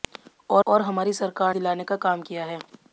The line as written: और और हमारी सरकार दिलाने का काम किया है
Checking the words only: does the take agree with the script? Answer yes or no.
yes